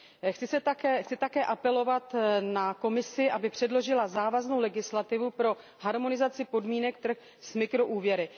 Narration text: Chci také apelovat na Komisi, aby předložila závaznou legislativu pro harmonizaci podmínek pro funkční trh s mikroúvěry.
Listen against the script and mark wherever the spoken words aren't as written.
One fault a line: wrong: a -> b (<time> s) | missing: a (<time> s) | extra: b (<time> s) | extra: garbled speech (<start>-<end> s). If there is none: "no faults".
missing: pro funkční (7.0 s)